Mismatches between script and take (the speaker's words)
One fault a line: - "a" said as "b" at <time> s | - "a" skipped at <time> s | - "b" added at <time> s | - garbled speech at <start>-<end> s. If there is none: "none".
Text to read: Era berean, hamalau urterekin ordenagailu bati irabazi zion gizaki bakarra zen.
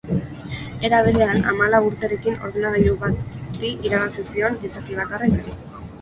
none